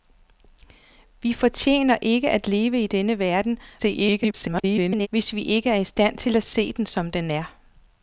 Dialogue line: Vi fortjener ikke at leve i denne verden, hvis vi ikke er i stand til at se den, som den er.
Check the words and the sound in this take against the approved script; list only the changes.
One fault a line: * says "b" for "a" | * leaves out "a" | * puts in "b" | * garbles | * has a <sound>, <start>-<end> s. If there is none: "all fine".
* garbles